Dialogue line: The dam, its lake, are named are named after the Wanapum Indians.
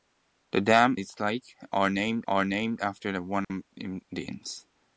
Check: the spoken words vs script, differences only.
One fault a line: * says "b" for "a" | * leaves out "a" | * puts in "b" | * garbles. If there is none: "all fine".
all fine